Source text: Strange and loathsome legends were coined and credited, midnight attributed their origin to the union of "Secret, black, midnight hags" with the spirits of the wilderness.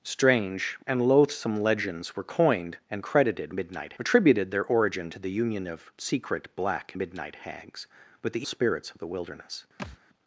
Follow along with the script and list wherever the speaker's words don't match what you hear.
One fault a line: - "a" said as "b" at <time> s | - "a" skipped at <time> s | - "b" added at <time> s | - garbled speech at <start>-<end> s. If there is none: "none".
none